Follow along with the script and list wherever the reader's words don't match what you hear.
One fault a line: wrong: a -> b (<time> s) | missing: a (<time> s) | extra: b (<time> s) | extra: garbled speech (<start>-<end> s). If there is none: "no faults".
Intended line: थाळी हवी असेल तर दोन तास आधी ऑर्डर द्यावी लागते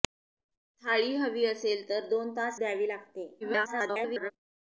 missing: आधी ऑर्डर (2.6 s)
extra: garbled speech (3.4-4.3 s)